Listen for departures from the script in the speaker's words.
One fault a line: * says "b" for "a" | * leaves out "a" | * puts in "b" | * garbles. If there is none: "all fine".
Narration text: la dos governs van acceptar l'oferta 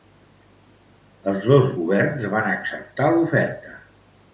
* says "els" for "la"